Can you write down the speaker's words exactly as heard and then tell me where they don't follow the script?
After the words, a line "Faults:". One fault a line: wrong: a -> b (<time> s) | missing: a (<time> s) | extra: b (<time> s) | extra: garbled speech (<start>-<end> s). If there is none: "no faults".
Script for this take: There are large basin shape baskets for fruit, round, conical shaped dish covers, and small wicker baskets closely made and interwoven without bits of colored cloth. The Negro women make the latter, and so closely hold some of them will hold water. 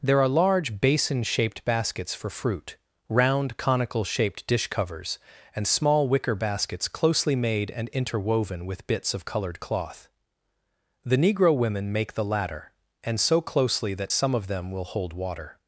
There are large basin shaped baskets for fruit, round, conical shaped dish covers, and small wicker baskets closely made and interwoven with bits of colored cloth. The Negro women make the latter, and so closely that some of them will hold water.
Faults:
wrong: shape -> shaped (1.2 s)
wrong: without -> with (8.7 s)
wrong: hold -> that (13.9 s)